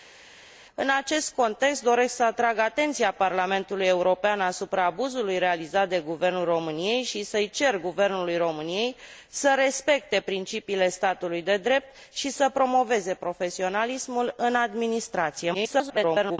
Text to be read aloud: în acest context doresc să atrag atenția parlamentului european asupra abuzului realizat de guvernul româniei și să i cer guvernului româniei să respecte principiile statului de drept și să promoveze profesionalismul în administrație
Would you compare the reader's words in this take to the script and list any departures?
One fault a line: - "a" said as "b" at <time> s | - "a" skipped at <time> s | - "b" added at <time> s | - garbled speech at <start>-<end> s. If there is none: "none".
- garbled speech at 15.5-16.4 s